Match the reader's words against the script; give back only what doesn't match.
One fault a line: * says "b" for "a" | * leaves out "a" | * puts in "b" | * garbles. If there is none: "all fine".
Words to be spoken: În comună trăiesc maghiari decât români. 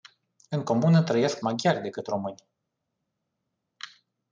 all fine